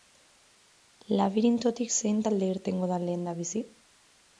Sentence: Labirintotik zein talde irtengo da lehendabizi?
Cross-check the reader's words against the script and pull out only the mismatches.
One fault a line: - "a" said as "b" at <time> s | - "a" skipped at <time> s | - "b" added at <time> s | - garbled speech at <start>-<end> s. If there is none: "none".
none